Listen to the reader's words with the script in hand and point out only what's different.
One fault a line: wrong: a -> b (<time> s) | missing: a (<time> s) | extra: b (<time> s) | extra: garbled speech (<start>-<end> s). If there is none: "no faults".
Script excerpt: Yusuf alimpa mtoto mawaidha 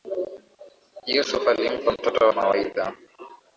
no faults